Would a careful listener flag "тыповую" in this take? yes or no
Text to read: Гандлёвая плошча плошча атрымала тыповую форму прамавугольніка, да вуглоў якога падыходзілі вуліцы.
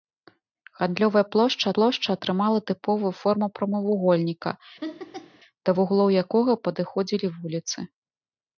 no